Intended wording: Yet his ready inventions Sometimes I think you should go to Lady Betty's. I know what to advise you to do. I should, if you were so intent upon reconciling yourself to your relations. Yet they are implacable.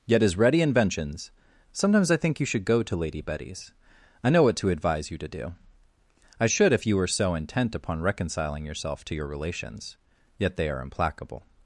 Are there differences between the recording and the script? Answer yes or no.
no